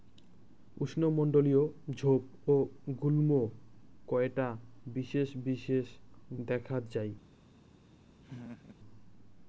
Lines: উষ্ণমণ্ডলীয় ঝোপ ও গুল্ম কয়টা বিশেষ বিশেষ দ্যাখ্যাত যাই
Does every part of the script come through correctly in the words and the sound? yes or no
no